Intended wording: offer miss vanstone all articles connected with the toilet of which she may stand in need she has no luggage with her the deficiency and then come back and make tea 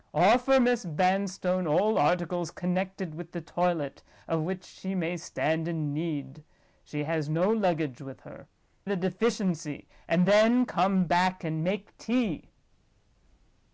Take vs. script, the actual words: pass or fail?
pass